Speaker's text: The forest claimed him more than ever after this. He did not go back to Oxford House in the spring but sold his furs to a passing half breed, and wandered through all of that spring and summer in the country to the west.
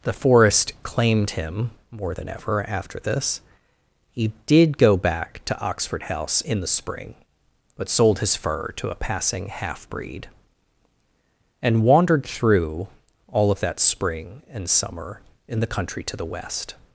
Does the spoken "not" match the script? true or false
false